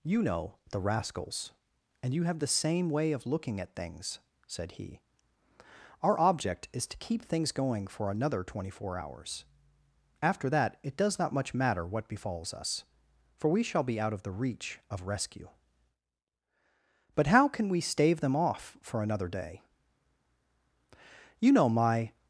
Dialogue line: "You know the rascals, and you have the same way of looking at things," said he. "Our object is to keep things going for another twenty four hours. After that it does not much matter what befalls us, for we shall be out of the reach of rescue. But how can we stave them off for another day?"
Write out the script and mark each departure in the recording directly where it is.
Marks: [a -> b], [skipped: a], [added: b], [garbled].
"You know the rascals, and you have the same way of looking at things," said he. "Our object is to keep things going for another twenty four hours. After that it does not much matter what befalls us, for we shall be out of the reach of rescue. But how can we stave them off for another day?" [added: You know my]